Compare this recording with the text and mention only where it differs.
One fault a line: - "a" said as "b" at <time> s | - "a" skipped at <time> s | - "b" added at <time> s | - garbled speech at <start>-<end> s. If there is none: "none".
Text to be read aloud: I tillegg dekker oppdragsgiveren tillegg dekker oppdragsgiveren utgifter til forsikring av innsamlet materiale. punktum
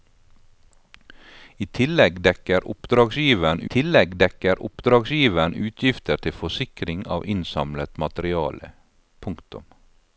none